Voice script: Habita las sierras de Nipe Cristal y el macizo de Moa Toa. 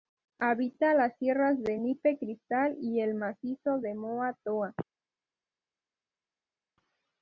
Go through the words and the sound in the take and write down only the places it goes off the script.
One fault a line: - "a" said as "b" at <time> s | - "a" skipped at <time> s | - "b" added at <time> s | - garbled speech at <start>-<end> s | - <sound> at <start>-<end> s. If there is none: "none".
none